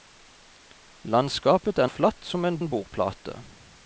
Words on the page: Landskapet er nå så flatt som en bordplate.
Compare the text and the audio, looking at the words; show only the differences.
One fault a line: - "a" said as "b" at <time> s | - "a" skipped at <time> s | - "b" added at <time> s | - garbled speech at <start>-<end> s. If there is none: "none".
- "nå så" skipped at 1.9 s
- "en" added at 2.6 s